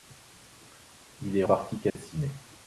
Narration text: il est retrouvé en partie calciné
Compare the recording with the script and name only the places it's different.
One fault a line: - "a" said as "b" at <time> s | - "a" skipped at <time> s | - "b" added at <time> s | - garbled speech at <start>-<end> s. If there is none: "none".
- "retrouvé en" skipped at 1.4 s